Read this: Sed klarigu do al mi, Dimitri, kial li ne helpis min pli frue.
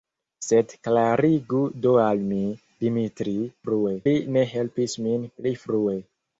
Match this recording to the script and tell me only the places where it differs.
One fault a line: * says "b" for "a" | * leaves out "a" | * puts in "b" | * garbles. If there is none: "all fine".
* says "frue" for "kial"